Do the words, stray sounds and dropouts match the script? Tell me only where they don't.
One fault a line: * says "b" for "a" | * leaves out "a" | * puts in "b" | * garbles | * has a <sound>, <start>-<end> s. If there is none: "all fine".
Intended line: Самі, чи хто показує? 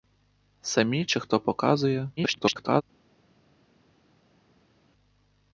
* garbles